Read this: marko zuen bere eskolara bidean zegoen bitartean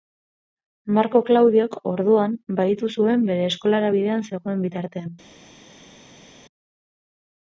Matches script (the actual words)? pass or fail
fail